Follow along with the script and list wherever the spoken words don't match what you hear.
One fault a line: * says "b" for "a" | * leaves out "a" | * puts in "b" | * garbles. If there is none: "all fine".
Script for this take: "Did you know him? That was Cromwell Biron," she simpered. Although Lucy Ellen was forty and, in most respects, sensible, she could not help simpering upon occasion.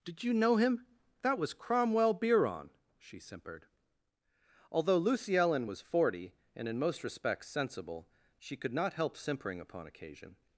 all fine